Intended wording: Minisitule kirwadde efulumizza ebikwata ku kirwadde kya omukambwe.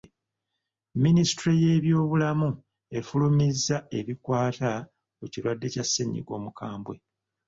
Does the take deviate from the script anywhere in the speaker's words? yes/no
yes